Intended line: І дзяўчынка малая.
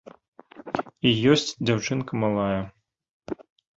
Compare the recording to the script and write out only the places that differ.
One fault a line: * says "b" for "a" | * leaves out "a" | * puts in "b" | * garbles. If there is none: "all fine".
* puts in "ёсць"